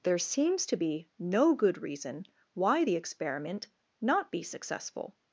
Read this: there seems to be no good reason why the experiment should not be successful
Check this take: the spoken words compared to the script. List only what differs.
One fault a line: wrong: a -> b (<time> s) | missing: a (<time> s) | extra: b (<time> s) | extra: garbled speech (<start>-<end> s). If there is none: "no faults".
missing: should (3.7 s)